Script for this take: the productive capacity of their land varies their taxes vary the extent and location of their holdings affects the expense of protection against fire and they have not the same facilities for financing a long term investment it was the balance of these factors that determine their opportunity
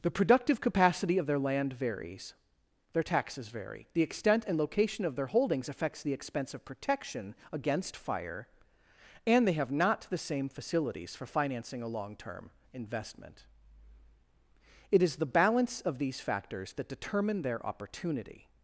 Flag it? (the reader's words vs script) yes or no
yes